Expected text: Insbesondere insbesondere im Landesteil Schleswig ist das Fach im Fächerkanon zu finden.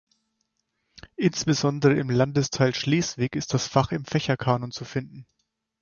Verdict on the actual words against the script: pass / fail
fail